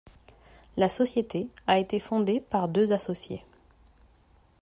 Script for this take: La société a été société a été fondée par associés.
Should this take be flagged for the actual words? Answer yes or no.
yes